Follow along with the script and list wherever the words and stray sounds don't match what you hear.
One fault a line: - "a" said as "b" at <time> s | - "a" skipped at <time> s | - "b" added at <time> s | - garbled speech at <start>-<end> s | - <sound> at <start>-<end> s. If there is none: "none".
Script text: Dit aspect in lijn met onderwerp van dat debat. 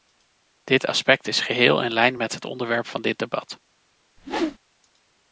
- "is geheel" added at 1.3 s
- "het" added at 2.3 s
- "dat" said as "dit" at 3.0 s
- whoosh at 4.2-4.6 s